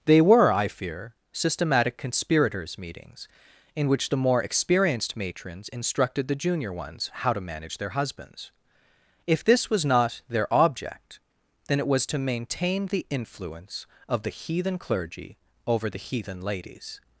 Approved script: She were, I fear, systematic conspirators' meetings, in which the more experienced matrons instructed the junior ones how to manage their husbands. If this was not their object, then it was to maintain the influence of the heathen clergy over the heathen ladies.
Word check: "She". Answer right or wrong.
wrong